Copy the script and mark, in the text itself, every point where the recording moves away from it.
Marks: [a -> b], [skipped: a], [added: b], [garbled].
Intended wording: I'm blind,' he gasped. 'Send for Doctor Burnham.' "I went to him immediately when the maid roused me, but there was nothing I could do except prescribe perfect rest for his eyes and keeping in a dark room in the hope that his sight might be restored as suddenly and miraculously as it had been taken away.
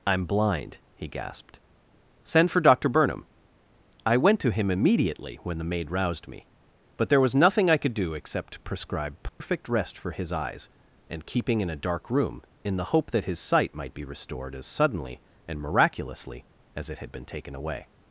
I'm blind,' he gasped. 'Send for Doctor Burnham.' "I went to him immediately when the maid roused me, but there was nothing I could do except prescribe perfect rest for his eyes and keeping in a dark room in the hope that his sight might be restored as suddenly and miraculously as it had been taken away.